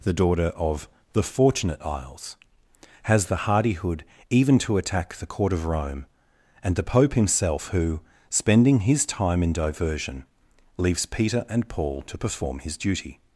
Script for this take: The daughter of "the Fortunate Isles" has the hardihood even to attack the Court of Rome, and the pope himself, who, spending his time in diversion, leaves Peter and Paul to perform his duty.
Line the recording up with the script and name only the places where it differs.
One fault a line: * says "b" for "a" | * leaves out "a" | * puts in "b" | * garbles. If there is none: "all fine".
all fine